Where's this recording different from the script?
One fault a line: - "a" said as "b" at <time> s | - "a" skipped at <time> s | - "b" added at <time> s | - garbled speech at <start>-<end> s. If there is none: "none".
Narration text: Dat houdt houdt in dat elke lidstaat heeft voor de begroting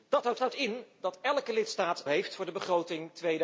none